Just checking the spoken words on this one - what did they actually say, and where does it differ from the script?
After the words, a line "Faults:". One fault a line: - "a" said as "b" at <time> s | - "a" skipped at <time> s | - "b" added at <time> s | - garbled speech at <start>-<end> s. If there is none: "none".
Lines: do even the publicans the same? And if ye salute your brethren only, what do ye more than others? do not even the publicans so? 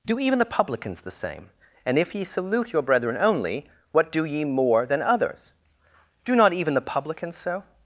do even the publicans the same? And if ye salute your brethren only, what do ye more than others? do not even the publicans so?
Faults:
none